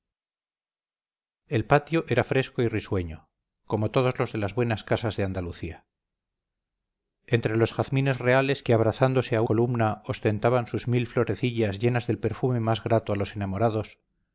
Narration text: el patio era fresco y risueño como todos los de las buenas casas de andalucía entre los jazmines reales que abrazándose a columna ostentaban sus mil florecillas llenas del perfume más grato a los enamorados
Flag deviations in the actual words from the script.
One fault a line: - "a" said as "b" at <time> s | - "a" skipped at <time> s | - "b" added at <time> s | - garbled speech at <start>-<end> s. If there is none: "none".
none